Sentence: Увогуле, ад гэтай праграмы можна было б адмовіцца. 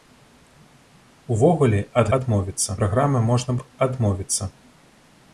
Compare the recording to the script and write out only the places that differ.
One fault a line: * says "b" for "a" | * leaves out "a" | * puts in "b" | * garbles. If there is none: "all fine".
* says "адмовіцца" for "гэтай"
* leaves out "было"